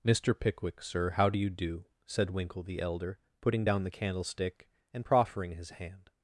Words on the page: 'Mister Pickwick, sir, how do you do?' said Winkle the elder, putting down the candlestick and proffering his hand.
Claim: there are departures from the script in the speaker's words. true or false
false